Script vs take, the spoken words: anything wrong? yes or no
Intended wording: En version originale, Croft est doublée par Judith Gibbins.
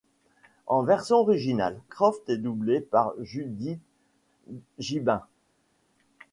no